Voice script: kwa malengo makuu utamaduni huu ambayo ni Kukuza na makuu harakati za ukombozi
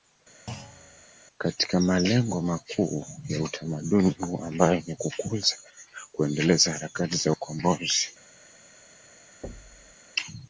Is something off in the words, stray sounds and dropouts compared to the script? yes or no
yes